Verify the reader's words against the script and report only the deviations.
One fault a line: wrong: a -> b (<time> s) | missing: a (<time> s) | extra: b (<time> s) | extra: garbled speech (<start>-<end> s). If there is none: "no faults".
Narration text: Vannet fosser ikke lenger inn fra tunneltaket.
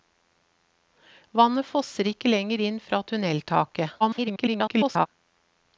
extra: garbled speech (4.0-5.1 s)